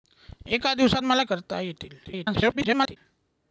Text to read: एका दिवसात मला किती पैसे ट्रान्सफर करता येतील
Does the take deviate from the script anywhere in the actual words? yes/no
yes